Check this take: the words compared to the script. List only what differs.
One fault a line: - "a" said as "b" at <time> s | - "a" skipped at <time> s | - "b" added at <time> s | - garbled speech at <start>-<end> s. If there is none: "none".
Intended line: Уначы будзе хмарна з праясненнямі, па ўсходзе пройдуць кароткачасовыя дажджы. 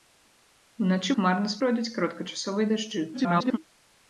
- "будзе" skipped at 1.1 s
- "праясненнямі па ўсходзе" skipped at 1.6 s
- garbled speech at 3.1-3.6 s